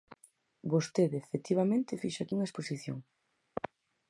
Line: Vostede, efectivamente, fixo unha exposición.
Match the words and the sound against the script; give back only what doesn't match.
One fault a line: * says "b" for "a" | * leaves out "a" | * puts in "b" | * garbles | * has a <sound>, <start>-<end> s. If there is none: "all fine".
* puts in "aquí"